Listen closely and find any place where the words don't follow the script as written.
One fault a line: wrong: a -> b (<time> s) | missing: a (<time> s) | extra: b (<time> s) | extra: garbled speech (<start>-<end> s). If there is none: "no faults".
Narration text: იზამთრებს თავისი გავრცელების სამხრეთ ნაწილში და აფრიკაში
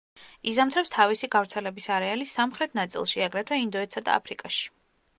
extra: არეალის (2.0 s)
extra: აგრეთვე ინდოეთსა (3.3 s)